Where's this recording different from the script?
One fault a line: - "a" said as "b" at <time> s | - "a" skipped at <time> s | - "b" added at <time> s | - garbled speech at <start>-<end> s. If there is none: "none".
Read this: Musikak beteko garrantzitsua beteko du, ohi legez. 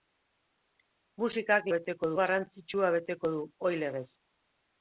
none